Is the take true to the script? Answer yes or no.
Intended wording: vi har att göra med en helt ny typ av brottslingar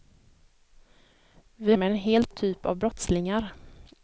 no